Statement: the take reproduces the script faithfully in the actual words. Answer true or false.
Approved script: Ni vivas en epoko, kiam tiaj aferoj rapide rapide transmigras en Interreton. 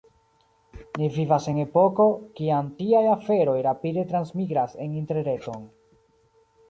false